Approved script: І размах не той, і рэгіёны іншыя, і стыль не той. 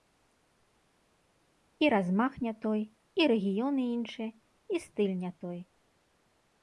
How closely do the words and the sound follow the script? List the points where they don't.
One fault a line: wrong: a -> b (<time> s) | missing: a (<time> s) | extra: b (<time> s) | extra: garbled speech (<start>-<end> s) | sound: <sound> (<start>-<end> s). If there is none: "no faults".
no faults